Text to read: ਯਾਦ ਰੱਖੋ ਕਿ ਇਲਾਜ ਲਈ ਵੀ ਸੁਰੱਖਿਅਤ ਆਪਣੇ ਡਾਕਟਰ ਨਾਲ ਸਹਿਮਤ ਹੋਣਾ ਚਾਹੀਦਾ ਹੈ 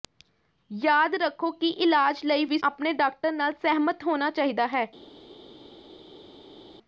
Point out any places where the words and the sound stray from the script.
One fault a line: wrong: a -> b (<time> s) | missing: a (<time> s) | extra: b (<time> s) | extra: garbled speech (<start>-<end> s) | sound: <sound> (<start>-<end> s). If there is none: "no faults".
missing: ਸੁਰੱਖਿਅਤ (2.6 s)